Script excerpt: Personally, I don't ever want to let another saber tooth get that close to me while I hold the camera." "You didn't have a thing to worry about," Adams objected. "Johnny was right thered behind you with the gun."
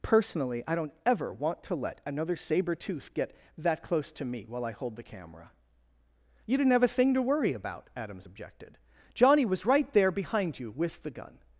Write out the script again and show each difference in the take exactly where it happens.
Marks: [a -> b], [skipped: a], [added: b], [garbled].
Personally, I don't ever want to let another saber tooth get that close to me while I hold the camera." "You didn't have a thing to worry about," Adams objected. "Johnny was right [thered -> there] behind you with the gun."